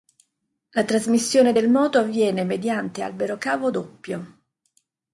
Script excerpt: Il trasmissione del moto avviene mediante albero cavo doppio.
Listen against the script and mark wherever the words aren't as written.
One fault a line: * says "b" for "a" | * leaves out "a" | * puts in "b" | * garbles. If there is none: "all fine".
* says "La" for "Il"